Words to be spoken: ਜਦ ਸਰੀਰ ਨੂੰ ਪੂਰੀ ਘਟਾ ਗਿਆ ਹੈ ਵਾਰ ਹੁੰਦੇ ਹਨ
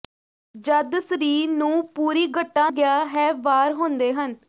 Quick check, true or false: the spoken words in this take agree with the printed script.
true